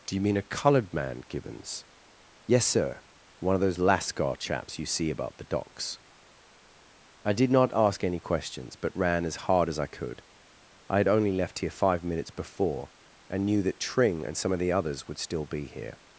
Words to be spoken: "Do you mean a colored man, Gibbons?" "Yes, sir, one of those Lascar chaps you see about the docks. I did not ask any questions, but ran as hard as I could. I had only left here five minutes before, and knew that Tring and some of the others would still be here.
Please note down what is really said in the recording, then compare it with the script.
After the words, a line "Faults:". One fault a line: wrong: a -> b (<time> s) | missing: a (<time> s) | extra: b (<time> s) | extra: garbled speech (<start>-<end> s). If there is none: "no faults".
"Do you mean a colored man, Gibbons?" "Yes, sir, one of those Lascar chaps you see about the docks. I did not ask any questions, but ran as hard as I could. I had only left here five minutes before, and knew that Tring and some of the others would still be here.
Faults:
no faults